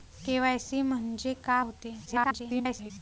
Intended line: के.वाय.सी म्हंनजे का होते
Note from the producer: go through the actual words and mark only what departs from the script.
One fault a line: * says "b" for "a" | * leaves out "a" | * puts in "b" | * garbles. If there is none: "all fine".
* garbles